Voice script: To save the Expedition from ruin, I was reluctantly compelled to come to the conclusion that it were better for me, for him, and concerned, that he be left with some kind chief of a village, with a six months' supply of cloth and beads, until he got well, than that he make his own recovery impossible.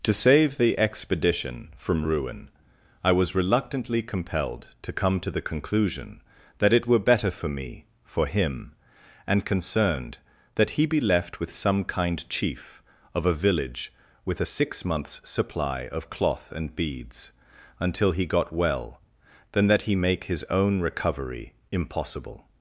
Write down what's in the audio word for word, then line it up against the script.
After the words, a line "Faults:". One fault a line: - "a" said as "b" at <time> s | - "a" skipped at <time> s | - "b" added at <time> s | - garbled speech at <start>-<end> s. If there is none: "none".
To save the Expedition from ruin, I was reluctantly compelled to come to the conclusion that it were better for me, for him, and concerned, that he be left with some kind chief of a village, with a six months' supply of cloth and beads, until he got well, than that he make his own recovery impossible.
Faults:
none